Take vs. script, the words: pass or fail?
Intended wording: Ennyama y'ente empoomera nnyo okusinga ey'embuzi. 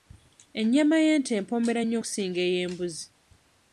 pass